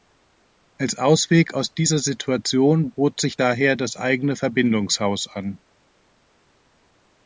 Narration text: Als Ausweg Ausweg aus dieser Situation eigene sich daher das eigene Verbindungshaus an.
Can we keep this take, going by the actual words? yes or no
no